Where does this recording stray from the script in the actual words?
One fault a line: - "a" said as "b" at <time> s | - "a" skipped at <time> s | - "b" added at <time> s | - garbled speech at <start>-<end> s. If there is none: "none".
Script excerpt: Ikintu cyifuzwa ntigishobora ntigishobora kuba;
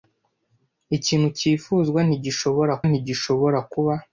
none